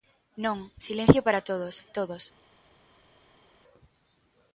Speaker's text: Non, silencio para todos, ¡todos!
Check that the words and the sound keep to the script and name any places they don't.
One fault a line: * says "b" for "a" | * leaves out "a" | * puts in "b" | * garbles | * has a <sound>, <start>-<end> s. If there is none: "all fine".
all fine